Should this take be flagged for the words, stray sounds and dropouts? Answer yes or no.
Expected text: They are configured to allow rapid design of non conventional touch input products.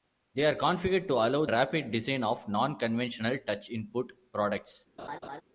yes